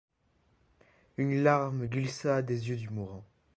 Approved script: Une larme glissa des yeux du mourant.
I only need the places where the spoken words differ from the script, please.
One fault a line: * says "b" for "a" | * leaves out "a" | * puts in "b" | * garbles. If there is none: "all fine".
all fine